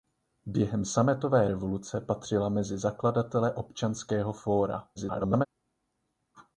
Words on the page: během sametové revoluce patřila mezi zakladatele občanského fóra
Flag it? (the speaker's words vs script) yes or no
yes